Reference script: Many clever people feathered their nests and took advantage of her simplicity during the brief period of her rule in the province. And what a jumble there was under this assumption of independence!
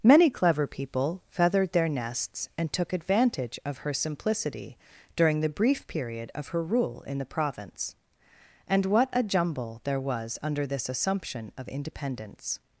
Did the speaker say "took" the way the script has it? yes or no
yes